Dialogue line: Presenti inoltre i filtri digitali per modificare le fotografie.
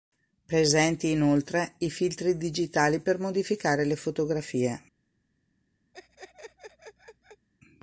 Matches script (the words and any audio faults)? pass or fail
fail